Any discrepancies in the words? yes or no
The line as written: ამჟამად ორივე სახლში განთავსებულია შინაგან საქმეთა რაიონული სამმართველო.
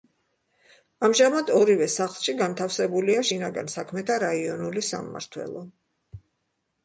no